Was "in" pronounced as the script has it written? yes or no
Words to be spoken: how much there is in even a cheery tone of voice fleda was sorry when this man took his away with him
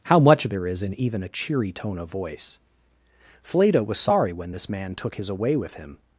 yes